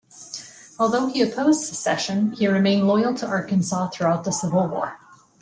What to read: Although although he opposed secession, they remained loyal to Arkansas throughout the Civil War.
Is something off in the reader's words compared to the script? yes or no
yes